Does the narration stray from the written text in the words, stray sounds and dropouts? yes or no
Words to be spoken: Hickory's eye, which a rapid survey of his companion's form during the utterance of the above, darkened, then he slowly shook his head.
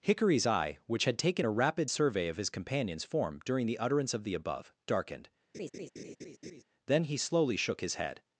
yes